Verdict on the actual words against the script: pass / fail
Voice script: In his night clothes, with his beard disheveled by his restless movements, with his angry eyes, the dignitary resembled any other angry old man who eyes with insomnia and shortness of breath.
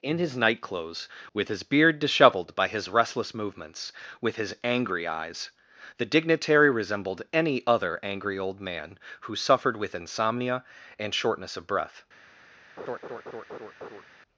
fail